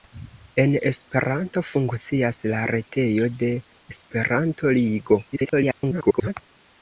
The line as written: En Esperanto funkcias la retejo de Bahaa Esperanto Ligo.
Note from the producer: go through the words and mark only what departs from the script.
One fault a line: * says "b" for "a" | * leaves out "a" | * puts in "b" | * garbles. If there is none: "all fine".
* leaves out "Bahaa"
* garbles